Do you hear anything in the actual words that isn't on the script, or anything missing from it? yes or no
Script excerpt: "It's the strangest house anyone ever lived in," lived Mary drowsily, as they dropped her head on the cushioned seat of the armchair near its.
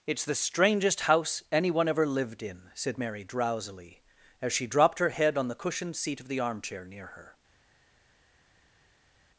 yes